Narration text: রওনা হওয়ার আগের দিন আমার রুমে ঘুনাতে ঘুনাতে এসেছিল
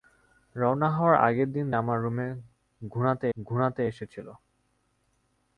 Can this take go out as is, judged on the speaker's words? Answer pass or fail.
pass